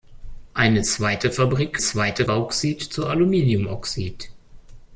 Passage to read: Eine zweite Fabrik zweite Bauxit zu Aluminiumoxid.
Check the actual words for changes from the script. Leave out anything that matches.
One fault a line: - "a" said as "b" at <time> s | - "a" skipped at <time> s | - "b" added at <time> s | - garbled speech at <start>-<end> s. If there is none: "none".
none